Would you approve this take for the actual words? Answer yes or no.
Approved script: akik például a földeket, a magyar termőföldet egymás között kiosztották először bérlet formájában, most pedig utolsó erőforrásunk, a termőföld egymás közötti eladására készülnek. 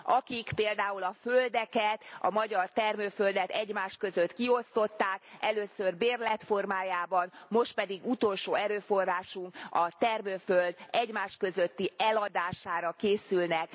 yes